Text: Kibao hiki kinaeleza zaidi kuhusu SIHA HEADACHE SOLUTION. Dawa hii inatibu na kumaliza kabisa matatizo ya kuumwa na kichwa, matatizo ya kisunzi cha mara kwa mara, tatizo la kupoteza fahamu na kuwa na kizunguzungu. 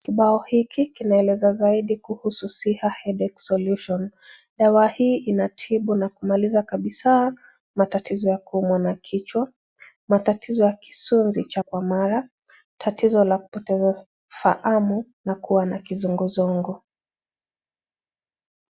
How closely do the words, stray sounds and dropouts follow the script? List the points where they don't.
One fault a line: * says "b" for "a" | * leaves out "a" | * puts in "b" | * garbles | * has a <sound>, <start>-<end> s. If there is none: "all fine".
* leaves out "mara"